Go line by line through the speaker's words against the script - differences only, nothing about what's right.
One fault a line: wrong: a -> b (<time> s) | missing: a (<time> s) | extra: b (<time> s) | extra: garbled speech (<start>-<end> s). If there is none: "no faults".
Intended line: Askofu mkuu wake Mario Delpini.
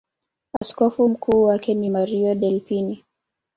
extra: ni (1.7 s)